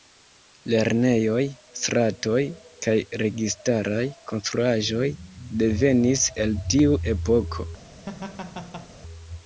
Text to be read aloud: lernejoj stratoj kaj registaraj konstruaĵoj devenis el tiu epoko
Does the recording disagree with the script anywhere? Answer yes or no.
no